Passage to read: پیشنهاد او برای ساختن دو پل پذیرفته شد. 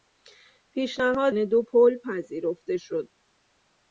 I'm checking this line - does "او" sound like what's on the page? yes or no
no